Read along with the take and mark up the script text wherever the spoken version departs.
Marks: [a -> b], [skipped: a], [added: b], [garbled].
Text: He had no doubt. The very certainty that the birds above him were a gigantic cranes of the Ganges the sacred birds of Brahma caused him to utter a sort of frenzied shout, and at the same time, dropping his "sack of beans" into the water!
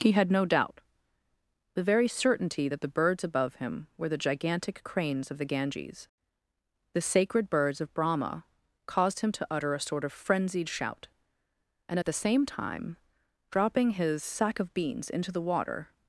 He had no doubt. The very certainty that the birds above him were [a -> the] gigantic cranes of the Ganges the sacred birds of Brahma caused him to utter a sort of frenzied shout, and at the same time, dropping his "sack of beans" into the water!